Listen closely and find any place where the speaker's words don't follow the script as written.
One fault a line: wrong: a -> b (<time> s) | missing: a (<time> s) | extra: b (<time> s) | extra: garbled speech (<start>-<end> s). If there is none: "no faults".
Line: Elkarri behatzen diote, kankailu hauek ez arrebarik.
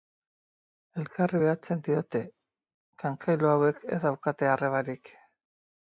extra: daukate (4.1 s)